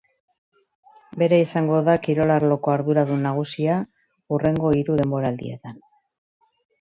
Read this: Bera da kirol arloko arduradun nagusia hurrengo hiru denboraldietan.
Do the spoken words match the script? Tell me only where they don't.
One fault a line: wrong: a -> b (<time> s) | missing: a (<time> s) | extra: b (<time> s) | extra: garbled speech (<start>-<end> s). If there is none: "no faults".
extra: izango (1.4 s)